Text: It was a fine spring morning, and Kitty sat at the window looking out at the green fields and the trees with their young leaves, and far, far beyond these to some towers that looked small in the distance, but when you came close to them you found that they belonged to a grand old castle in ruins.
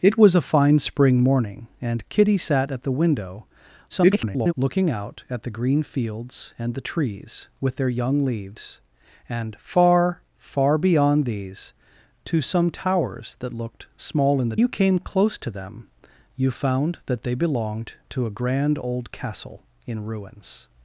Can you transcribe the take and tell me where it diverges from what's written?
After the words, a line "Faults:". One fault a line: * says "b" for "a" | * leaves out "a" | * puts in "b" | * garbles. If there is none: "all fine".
It was a fine spring morning, and Kitty sat at the window [garbled] looking out at the green fields and the trees with their young leaves, and far, far beyond these to some towers that looked small in the you came close to them you found that they belonged to a grand old castle in ruins.
Faults:
* garbles
* leaves out "distance but when"